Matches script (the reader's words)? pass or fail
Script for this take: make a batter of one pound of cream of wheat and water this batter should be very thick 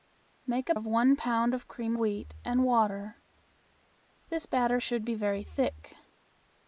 fail